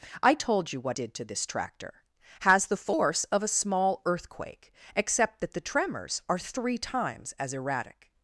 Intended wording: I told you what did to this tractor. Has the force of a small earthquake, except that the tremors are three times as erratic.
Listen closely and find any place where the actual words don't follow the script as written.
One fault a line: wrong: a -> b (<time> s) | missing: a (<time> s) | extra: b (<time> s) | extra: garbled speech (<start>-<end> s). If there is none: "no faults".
no faults